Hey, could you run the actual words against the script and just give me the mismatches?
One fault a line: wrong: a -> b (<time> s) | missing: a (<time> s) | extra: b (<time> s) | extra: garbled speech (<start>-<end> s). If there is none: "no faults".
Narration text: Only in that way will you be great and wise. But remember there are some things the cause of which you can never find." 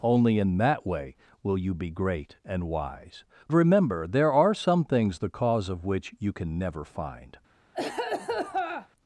missing: But (3.2 s)